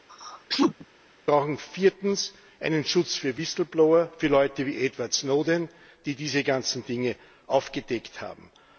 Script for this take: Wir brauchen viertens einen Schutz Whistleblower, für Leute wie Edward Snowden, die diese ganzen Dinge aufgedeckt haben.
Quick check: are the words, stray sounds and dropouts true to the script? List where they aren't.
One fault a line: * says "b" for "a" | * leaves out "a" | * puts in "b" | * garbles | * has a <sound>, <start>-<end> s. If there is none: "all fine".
* has a sneeze, 0.1-0.9 s
* puts in "für"